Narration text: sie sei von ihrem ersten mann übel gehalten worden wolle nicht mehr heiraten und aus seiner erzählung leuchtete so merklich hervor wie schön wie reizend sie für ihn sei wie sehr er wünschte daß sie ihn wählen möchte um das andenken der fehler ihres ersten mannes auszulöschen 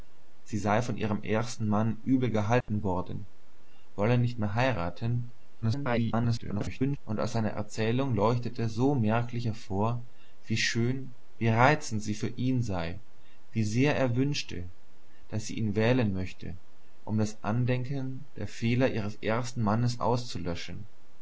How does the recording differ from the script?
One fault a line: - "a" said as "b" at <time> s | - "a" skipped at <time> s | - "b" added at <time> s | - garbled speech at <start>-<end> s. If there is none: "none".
- garbled speech at 5.6-7.0 s